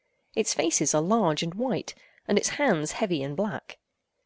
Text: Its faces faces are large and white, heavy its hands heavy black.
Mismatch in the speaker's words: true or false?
true